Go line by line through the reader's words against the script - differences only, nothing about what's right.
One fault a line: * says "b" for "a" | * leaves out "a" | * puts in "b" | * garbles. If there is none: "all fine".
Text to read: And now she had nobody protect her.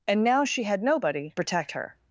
all fine